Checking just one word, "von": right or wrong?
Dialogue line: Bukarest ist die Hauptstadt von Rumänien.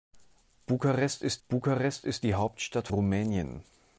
wrong